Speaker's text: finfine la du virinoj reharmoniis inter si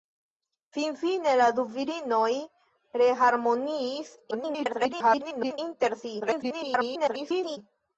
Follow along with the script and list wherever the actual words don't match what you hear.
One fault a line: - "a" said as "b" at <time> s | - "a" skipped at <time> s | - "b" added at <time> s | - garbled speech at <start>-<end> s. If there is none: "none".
- garbled speech at 4.3-5.6 s
- garbled speech at 6.2-7.6 s